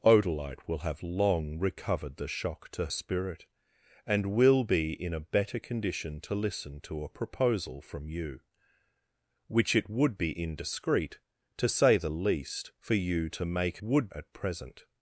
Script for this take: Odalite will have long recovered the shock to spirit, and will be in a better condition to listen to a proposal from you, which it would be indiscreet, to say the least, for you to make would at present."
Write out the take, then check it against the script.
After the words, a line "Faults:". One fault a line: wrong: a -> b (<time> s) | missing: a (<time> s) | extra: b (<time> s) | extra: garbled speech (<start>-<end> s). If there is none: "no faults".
Odalite will have long recovered the shock to spirit, and will be in a better condition to listen to a proposal from you, which it would be indiscreet, to say the least, for you to make would at present."
Faults:
no faults